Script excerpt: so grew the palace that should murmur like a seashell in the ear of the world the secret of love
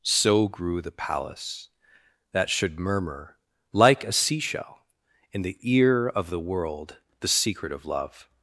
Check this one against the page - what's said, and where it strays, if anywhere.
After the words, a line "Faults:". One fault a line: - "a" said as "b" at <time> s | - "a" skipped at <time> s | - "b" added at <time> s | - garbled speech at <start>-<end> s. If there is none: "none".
so grew the palace that should murmur like a seashell in the ear of the world the secret of love
Faults:
none